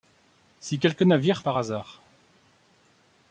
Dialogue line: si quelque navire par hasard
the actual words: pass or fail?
pass